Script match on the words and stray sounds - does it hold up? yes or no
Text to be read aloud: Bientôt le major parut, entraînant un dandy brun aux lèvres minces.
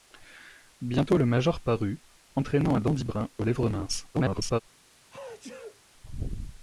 no